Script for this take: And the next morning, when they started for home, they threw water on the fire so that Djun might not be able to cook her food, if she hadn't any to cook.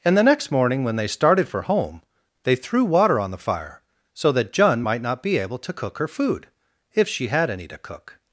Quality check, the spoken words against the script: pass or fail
fail